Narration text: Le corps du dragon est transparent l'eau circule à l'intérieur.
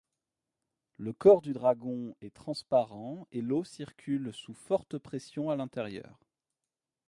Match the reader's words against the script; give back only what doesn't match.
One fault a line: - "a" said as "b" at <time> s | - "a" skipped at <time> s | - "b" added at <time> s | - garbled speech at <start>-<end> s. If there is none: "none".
- "et" added at 3.3 s
- "sous forte pression" added at 4.3 s